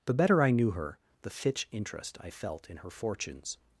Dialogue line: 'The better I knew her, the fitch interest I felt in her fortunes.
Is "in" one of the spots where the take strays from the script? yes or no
no